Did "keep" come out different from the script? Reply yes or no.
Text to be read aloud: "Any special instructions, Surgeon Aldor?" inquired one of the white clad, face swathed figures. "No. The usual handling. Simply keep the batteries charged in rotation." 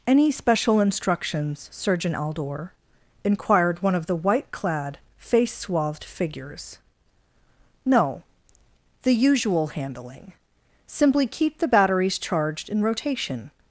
no